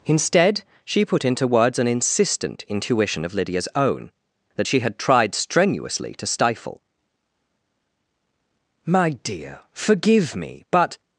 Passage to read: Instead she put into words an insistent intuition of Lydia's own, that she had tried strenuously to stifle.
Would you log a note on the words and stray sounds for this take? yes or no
yes